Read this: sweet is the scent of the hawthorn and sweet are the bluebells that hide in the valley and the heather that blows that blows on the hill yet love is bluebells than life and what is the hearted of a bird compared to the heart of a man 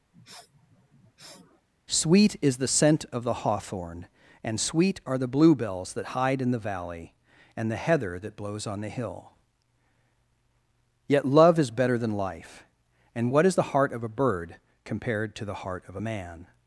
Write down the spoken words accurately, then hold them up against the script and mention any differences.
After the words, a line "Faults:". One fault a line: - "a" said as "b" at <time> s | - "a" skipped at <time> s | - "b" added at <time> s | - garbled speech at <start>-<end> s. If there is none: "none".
sweet is the scent of the hawthorn and sweet are the bluebells that hide in the valley and the heather that blows on the hill yet love is better than life and what is the heart of a bird compared to the heart of a man
Faults:
- "that blows" skipped at 8.7 s
- "bluebells" said as "better" at 11.7 s
- "hearted" said as "heart" at 13.6 s